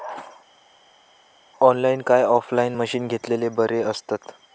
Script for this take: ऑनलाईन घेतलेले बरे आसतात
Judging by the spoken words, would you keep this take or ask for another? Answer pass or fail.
fail